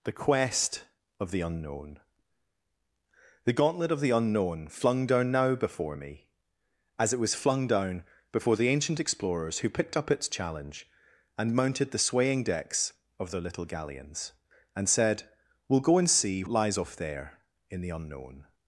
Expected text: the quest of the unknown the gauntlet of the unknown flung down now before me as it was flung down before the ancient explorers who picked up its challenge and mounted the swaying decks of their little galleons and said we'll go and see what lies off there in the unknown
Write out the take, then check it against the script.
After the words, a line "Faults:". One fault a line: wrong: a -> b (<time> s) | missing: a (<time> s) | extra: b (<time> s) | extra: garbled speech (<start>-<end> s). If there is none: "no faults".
the quest of the unknown the gauntlet of the unknown flung down now before me as it was flung down before the ancient explorers who picked up its challenge and mounted the swaying decks of their little galleons and said we'll go and see lies off there in the unknown
Faults:
missing: what (16.4 s)